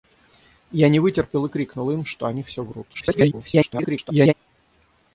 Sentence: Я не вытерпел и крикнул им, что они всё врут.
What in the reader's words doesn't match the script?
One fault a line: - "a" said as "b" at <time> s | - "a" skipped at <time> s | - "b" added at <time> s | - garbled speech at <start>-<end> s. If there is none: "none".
- garbled speech at 2.9-4.3 s